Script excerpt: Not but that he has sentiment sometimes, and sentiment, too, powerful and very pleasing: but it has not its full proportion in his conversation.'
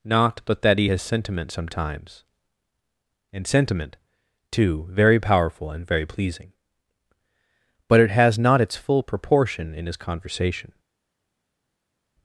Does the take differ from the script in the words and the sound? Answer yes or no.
yes